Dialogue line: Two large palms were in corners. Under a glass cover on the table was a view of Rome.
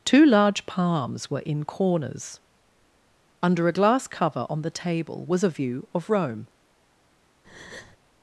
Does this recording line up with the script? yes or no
yes